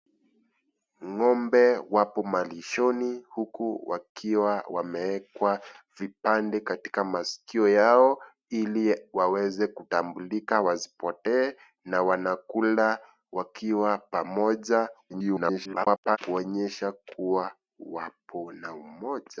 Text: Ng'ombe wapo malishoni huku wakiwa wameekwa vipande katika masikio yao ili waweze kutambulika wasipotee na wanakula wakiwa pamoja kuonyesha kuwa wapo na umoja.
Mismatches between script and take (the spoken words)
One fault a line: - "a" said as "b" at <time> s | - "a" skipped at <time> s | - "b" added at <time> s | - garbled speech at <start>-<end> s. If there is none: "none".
- garbled speech at 15.1-16.2 s